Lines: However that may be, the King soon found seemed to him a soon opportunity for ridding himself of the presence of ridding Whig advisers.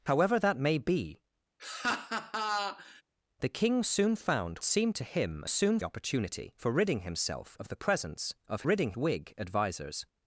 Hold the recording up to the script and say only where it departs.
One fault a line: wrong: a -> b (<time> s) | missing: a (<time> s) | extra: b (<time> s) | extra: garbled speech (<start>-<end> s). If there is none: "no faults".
no faults